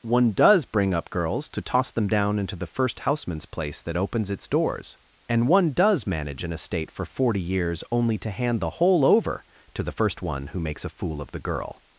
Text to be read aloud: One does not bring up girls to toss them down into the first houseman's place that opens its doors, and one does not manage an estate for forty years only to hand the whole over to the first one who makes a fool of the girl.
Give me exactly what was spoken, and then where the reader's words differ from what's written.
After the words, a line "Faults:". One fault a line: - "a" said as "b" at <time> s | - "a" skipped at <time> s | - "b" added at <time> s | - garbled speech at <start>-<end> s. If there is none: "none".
One does bring up girls to toss them down into the first houseman's place that opens its doors, and one does manage an estate for forty years only to hand the whole over to the first one who makes a fool of the girl.
Faults:
- "not" skipped at 0.7 s
- "not" skipped at 6.1 s